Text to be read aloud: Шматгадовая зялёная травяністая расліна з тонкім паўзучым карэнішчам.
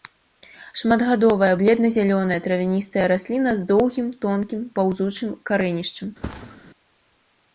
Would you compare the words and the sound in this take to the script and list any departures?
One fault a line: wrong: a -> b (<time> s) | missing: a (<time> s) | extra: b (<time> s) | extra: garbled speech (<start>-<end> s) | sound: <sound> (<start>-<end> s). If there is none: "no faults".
extra: бледна (1.6 s)
extra: доўгім (3.7 s)
sound: thud (6.2-6.6 s)